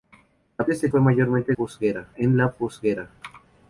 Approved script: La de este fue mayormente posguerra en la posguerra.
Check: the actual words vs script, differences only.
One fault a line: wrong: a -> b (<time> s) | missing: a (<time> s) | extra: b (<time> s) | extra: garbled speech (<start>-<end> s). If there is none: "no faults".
no faults